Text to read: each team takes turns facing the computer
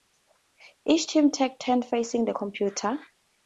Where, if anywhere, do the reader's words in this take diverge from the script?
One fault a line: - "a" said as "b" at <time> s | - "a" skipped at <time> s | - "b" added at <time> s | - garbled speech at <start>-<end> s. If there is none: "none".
none